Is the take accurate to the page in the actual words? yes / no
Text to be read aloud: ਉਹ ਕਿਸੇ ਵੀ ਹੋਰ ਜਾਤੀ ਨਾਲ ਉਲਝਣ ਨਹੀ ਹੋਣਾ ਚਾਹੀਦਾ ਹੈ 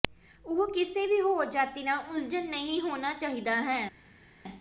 yes